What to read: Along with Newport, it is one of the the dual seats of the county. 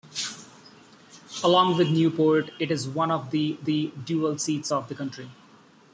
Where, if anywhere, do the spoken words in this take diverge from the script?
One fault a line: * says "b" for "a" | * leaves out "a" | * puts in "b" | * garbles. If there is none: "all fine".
all fine